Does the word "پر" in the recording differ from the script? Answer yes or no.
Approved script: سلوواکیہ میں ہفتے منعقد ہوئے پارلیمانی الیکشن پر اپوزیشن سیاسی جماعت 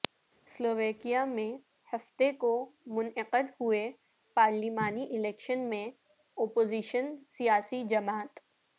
yes